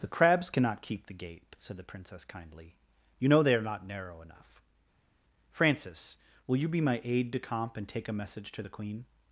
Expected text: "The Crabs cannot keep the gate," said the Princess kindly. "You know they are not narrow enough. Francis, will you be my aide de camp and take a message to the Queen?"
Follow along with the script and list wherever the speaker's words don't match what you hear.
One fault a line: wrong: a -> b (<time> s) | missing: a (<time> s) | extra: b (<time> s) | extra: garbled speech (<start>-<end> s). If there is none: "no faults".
no faults